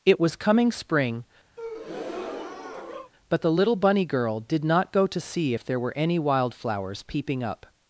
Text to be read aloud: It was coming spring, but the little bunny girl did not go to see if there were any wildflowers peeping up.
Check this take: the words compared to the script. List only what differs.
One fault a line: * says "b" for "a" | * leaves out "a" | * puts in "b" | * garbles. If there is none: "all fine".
all fine